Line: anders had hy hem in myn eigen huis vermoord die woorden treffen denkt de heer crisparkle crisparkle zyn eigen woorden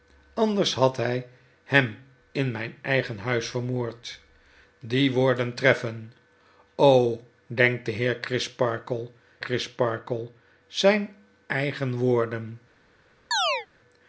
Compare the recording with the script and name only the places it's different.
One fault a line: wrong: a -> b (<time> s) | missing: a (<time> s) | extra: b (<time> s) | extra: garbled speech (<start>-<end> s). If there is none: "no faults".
no faults